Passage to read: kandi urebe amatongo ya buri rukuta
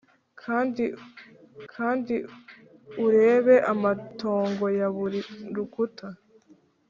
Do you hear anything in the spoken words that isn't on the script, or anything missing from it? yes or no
yes